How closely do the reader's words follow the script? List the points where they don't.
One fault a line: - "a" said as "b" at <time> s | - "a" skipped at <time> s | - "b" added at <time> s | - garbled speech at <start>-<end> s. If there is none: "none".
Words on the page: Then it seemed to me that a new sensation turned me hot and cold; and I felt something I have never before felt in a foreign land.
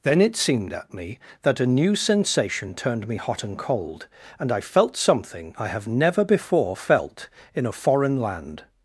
- "to" said as "at" at 0.7 s